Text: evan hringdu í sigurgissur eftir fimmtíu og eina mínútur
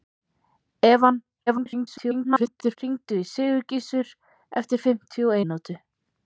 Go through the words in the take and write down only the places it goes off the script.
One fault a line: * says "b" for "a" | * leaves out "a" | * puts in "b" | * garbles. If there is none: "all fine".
* garbles
* leaves out "eina"